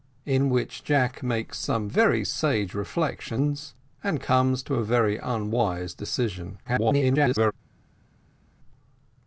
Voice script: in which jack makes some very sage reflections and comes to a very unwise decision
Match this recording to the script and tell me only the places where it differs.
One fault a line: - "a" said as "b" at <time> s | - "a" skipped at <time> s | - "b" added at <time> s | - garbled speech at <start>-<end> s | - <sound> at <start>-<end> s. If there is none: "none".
- garbled speech at 6.6-7.5 s